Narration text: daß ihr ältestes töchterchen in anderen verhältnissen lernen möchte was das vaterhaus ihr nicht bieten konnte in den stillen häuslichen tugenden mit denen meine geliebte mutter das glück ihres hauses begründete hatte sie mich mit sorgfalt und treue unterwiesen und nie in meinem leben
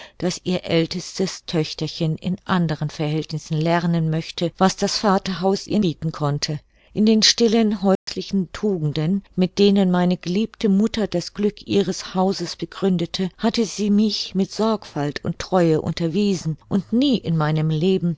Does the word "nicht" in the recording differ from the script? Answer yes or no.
yes